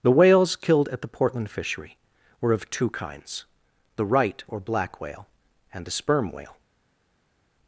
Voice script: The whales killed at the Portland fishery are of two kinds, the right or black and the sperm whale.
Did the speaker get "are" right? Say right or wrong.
wrong